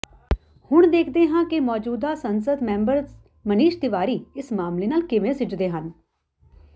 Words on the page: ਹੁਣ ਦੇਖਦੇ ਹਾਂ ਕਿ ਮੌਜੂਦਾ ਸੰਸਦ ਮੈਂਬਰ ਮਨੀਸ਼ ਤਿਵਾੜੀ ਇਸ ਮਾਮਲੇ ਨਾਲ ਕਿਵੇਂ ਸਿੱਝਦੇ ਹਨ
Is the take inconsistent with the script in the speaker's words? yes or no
no